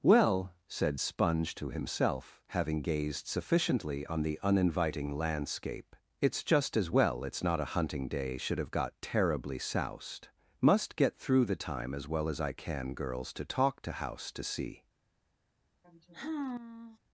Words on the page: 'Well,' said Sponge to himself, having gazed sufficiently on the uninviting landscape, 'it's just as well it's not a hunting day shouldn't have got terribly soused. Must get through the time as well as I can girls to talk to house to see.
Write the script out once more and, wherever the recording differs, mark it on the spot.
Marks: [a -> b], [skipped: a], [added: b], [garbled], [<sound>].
'Well,' said Sponge to himself, having gazed sufficiently on the uninviting landscape, 'it's just as well it's not a hunting day [shouldn't -> should] have got terribly soused. Must get through the time as well as I can girls to talk to house to see. [sigh]